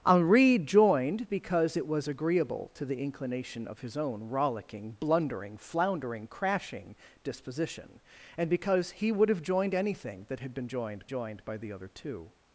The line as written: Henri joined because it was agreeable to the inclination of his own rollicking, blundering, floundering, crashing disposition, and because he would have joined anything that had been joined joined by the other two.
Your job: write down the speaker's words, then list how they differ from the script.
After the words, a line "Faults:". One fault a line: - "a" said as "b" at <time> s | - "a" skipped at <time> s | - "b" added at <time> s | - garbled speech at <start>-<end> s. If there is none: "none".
Henri joined because it was agreeable to the inclination of his own rollicking, blundering, floundering, crashing disposition, and because he would have joined anything that had been joined joined by the other two.
Faults:
none